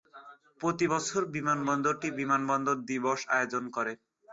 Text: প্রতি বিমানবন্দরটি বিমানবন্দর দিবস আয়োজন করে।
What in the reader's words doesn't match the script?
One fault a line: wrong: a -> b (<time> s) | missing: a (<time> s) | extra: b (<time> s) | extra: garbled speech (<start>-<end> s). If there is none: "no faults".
extra: বছর (0.9 s)